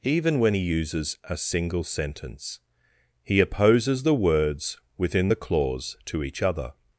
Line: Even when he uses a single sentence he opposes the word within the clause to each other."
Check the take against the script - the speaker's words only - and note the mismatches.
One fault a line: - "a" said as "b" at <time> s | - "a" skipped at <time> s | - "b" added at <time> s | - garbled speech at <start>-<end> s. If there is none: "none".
- "word" said as "words" at 4.1 s